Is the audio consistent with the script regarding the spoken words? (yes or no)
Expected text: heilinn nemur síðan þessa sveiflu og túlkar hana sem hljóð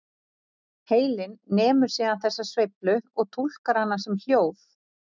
yes